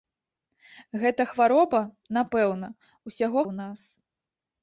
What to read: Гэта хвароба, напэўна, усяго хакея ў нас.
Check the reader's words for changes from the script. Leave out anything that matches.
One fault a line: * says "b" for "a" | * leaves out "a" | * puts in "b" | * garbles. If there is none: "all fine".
* leaves out "хакея"